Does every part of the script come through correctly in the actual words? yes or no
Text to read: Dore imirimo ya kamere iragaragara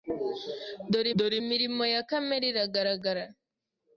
no